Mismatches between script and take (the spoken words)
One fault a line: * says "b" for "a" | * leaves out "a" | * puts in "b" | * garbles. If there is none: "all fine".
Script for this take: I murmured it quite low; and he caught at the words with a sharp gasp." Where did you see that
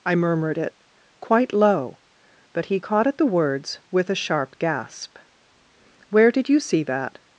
* says "but" for "and"